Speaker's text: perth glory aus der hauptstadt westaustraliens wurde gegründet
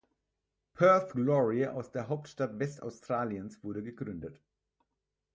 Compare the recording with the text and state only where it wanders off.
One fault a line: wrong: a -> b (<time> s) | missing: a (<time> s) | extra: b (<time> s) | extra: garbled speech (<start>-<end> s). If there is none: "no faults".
no faults